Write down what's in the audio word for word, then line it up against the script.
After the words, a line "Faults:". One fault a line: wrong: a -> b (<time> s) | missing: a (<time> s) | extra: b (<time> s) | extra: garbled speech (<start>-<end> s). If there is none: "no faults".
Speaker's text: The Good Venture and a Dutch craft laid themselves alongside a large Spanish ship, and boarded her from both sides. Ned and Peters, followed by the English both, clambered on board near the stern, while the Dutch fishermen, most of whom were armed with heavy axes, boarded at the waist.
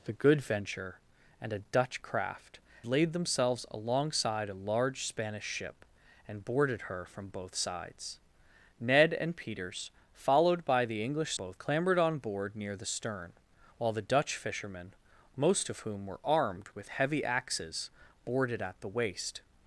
The Good Venture and a Dutch craft laid themselves alongside a large Spanish ship, and boarded her from both sides. Ned and Peters, followed by the English both, clambered on board near the stern, while the Dutch fishermen, most of whom were armed with heavy axes, boarded at the waist.
Faults:
no faults